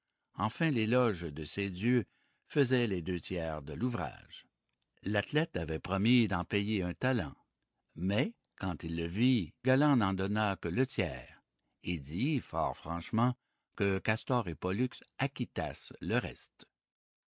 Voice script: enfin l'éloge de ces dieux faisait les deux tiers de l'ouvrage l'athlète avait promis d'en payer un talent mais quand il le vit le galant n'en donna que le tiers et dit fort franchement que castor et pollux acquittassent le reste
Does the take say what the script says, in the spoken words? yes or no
no